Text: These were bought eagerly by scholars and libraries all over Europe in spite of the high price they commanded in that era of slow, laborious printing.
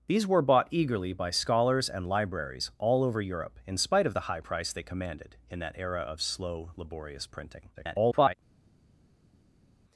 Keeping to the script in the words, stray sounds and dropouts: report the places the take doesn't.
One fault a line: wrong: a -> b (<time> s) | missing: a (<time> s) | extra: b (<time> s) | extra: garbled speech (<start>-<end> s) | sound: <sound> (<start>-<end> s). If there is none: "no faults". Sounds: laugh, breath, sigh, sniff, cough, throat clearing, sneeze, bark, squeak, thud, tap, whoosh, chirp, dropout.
extra: garbled speech (7.7-8.3 s)